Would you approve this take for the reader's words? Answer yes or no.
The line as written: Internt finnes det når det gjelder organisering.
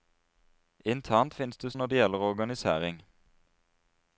yes